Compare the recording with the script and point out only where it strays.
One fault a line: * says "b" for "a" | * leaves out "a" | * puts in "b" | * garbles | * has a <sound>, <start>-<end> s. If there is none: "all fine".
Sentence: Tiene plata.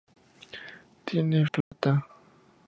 * has a dropout, 1.6-1.7 s